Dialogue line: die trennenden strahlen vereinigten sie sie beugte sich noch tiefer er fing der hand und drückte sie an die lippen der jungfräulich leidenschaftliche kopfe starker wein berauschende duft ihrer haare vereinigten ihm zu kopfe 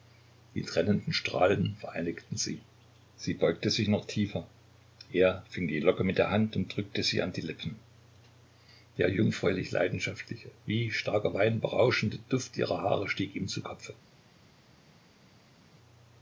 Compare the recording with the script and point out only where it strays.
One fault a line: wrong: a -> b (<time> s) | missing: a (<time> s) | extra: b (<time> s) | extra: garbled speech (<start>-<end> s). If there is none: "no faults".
extra: die locke mit (5.7 s)
wrong: kopfe -> wie (10.6 s)
wrong: vereinigten -> stieg (13.1 s)